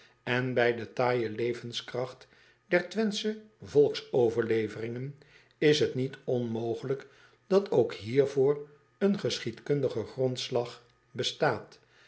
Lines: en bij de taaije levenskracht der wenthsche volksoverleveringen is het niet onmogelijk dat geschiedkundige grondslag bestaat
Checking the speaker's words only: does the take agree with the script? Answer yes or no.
no